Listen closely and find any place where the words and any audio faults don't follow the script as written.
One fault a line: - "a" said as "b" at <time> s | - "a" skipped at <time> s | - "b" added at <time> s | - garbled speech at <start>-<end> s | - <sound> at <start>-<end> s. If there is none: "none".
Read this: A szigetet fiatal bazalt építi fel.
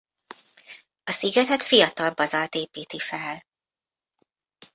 none